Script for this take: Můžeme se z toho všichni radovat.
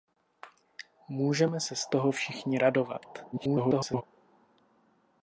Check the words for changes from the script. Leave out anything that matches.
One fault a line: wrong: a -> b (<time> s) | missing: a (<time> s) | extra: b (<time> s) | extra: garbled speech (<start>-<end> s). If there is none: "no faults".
extra: garbled speech (3.3-4.0 s)